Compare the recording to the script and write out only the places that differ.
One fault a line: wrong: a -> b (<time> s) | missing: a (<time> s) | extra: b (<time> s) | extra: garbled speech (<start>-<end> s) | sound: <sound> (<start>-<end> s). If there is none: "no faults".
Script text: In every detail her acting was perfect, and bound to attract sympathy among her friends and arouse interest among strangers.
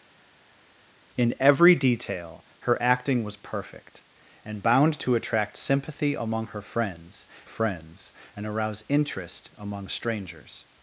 extra: friends (7.5 s)